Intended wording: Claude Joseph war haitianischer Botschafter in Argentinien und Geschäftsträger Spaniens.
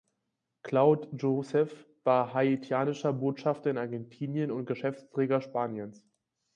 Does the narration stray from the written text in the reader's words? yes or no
no